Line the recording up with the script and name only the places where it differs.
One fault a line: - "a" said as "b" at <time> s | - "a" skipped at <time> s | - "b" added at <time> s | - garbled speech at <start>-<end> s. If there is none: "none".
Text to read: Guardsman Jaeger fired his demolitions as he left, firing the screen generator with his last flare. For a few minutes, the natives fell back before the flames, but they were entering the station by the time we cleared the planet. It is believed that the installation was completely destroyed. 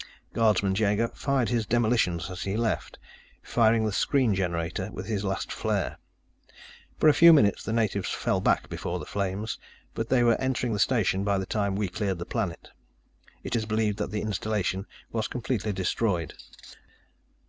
none